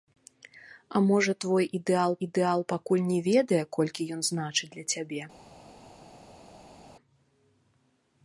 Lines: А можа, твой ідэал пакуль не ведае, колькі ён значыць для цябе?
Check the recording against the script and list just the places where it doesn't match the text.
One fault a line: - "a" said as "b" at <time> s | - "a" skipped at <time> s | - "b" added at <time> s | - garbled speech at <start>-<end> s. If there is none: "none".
- "ідэал" added at 2.3 s